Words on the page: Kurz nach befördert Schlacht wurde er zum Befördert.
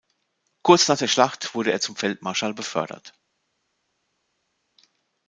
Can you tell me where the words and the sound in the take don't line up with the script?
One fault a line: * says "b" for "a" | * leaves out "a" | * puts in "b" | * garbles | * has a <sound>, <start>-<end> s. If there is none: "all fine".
* says "der" for "befördert"
* puts in "Feldmarschall"